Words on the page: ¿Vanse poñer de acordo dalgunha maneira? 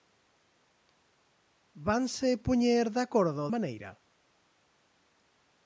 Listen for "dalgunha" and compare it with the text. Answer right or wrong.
wrong